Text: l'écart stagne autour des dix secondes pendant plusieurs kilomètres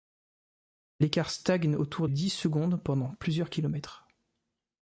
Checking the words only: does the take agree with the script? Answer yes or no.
no